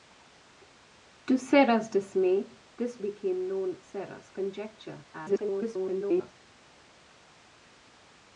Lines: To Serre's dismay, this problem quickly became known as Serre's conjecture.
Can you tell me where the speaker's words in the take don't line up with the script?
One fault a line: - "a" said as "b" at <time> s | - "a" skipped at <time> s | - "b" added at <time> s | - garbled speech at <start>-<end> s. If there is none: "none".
- "problem quickly" skipped at 3.0 s
- "as" skipped at 3.8 s
- garbled speech at 5.1-6.3 s